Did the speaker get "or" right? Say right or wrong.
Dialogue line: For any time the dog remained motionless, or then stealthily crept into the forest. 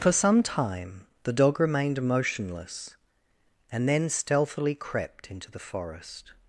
wrong